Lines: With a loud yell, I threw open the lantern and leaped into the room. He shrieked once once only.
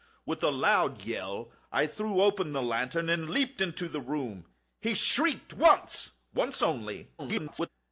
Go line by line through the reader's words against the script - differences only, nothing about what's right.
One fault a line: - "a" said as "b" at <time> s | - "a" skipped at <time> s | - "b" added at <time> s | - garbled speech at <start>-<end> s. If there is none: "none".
- garbled speech at 7.2-7.7 s